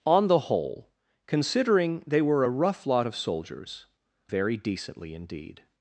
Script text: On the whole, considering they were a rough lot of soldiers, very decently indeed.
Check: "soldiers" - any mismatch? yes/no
no